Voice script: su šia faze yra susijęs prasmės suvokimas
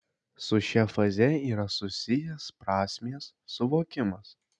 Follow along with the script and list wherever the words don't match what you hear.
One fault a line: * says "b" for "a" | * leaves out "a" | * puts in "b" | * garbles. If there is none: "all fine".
all fine